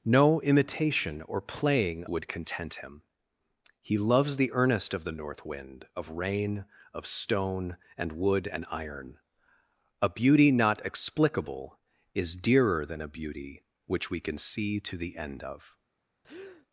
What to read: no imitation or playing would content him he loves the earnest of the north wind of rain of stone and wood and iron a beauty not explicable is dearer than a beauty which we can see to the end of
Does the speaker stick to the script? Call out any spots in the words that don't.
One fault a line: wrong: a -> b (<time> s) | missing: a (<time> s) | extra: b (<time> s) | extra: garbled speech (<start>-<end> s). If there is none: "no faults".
no faults